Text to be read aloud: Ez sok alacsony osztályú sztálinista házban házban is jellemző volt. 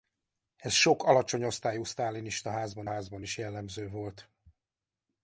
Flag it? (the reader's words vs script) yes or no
no